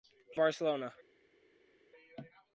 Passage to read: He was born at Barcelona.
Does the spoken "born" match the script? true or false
false